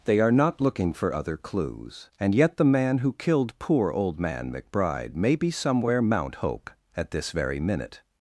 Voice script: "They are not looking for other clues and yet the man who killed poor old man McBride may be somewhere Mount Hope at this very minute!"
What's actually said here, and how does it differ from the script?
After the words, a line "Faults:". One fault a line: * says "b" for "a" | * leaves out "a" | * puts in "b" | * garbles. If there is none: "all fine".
"They are not looking for other clues and yet the man who killed poor old man McBride may be somewhere Mount Hope at this very minute!"
Faults:
all fine